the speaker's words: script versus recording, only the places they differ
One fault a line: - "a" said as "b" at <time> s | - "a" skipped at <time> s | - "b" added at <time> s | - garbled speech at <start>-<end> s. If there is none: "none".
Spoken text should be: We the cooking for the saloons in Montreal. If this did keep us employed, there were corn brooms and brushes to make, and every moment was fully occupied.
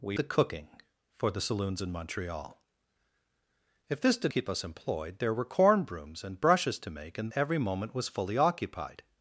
none